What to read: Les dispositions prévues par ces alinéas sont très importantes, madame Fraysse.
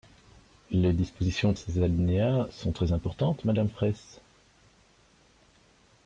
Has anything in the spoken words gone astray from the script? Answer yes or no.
yes